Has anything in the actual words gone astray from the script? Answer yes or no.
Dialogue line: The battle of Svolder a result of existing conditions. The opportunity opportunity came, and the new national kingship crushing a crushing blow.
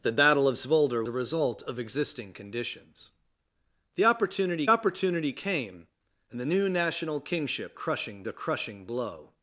no